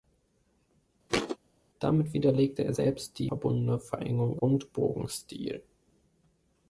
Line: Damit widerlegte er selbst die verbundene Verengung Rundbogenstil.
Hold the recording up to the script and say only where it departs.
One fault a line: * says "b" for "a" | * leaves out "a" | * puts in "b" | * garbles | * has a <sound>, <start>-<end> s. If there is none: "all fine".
* has a thud, 1.1-1.4 s